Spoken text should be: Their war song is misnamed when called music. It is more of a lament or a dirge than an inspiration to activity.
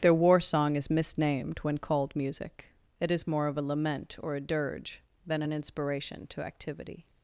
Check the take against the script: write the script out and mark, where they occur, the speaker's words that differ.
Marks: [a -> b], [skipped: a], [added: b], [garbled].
Their war song is misnamed when called music. It is more of a lament or a dirge than an inspiration to activity.